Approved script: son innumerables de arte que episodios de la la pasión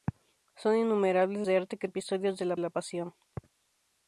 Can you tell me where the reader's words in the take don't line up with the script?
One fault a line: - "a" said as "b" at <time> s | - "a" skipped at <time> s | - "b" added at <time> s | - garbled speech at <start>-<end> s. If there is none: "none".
none